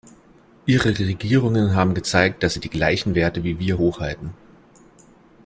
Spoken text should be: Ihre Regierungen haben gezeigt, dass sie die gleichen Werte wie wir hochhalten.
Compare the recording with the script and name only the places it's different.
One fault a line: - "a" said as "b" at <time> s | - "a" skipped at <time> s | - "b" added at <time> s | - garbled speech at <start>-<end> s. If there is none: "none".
none